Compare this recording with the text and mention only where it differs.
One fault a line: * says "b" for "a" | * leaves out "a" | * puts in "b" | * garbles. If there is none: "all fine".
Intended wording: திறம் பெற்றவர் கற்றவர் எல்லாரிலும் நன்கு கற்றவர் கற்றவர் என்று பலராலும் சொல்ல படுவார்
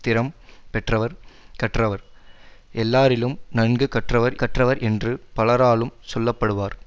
all fine